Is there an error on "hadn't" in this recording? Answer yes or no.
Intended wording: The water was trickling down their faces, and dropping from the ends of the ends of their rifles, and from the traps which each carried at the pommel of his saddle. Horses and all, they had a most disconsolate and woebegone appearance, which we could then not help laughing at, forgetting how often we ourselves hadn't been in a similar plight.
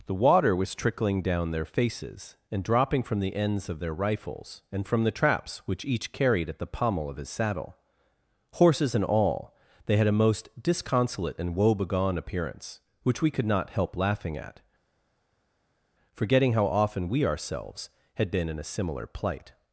yes